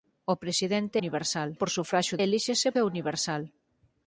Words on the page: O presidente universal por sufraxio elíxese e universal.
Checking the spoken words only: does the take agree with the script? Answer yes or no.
yes